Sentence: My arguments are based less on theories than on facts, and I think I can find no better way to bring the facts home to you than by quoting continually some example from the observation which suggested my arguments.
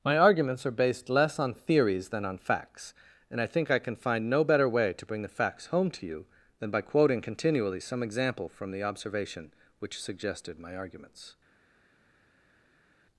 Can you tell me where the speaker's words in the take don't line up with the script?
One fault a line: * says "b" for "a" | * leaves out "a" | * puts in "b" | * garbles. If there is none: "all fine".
all fine